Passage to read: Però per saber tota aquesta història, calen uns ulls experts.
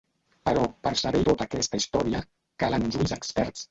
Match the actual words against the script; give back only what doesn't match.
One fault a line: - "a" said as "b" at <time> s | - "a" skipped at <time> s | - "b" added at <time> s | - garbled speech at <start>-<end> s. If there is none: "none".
none